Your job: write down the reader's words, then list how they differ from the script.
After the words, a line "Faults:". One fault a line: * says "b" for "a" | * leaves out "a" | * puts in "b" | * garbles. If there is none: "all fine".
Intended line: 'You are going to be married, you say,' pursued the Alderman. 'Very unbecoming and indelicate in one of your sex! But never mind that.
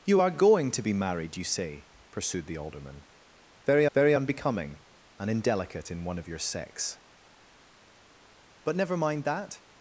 'You are going to be married, you say,' pursued the Alderman. 'Very very unbecoming and indelicate in one of your sex! But never mind that.
Faults:
* puts in "very"